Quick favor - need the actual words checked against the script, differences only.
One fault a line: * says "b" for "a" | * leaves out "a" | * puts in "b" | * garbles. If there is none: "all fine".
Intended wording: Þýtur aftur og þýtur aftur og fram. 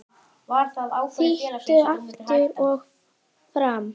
* leaves out "þýtur aftur og"